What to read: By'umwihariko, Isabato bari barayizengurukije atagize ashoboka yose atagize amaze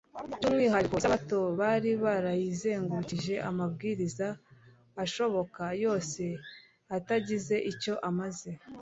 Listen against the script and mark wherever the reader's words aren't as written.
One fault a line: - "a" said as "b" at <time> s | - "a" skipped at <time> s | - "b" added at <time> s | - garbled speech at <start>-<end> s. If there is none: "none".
- "atagize" said as "amabwiriza" at 3.5 s
- "icyo" added at 7.7 s